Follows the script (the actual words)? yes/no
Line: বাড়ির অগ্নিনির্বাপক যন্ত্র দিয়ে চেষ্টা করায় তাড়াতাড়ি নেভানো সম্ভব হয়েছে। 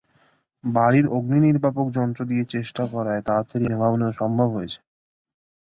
yes